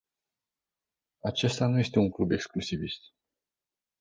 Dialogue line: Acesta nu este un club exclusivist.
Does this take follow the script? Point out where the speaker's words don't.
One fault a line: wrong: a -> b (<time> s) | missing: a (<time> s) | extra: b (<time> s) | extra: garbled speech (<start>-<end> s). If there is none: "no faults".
no faults